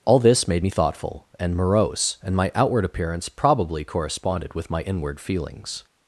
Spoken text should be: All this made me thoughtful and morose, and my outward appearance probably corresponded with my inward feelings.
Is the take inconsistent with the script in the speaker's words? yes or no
no